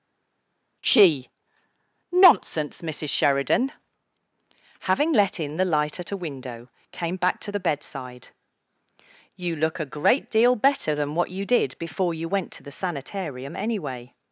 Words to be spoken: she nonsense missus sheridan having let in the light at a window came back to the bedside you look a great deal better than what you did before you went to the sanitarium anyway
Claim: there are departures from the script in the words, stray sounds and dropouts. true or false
false